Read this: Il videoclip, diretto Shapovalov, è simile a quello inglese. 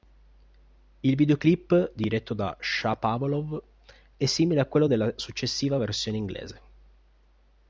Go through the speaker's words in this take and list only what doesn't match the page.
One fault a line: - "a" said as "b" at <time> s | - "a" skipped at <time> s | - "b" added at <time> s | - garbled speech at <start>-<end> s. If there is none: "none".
- "da" added at 2.3 s
- "della successiva versione" added at 4.9 s